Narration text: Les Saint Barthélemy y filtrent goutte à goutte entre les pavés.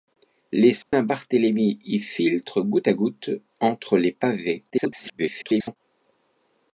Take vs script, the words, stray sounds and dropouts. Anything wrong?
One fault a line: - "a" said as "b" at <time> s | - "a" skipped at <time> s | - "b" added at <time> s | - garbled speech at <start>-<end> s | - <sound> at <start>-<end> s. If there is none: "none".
- dropout at 0.8-0.9 s
- garbled speech at 4.7-5.8 s